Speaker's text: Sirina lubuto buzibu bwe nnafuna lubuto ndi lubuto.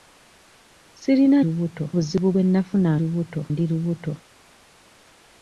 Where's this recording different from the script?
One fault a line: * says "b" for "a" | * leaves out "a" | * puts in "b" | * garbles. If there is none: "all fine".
all fine